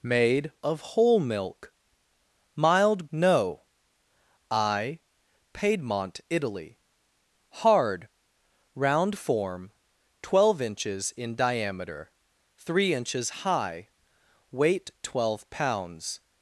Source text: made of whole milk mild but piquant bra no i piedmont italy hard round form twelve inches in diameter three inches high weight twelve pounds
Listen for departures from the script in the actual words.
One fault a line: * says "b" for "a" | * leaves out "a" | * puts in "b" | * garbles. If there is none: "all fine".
* leaves out "but piquant bra"